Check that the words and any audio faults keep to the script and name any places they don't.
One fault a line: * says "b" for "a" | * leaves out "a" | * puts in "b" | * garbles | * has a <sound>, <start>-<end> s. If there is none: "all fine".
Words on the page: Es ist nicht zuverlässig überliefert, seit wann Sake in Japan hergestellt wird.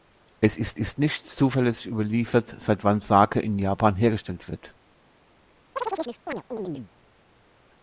* puts in "ist"
* has a chirp, 5.8-6.9 s